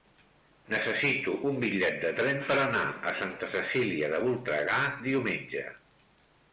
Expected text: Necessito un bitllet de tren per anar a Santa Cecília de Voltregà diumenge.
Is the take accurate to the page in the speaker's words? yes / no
yes